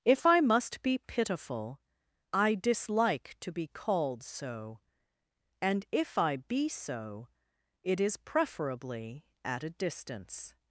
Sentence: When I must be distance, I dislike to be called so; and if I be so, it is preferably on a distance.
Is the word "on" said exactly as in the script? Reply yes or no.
no